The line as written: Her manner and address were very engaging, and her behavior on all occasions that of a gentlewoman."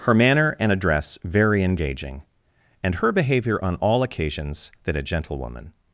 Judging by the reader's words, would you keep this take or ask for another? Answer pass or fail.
fail